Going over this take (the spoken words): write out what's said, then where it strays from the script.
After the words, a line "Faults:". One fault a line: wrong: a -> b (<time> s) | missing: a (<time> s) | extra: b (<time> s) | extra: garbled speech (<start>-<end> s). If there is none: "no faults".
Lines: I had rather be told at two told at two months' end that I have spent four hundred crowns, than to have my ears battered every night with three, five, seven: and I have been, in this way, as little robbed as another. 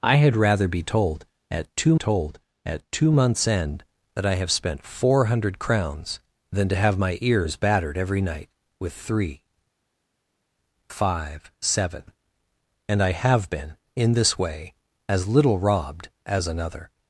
I had rather be told at two told at two months' end that I have spent four hundred crowns, than to have my ears battered every night with three, five, seven: and I have been, in this way, as little robbed as another.
Faults:
no faults